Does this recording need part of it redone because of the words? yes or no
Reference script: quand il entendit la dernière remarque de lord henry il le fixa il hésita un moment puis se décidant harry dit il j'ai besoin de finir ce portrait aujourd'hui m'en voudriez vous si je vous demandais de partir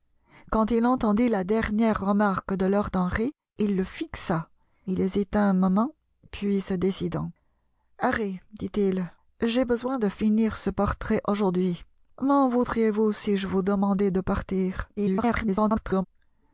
yes